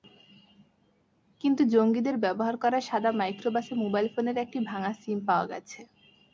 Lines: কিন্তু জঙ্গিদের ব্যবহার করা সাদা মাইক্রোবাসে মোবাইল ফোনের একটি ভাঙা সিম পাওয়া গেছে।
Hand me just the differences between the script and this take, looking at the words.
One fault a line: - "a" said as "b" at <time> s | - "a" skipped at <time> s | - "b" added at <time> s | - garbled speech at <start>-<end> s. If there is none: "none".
none